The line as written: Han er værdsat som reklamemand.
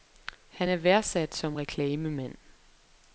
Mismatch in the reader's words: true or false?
false